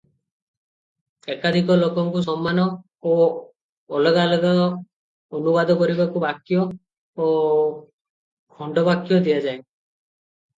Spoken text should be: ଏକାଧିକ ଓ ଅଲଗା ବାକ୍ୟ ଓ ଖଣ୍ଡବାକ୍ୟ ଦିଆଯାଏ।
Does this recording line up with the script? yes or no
no